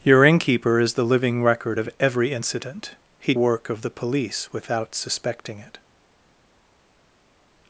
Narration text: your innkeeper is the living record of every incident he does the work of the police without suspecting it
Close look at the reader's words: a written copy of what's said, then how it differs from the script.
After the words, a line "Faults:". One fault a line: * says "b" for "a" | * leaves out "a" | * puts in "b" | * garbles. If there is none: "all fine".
your innkeeper is the living record of every incident he work of the police without suspecting it
Faults:
* leaves out "does the"